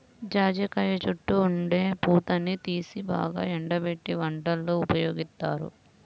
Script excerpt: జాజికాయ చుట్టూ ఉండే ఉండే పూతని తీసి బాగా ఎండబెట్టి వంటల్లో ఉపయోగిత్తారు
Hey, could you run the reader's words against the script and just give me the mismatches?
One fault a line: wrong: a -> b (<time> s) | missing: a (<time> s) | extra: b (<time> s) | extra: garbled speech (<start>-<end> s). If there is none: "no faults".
missing: ఉండే (1.8 s)